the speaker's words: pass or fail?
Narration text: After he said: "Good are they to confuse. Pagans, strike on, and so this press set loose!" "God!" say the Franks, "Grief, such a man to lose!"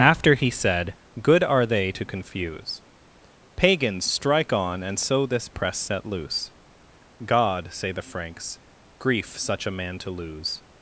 pass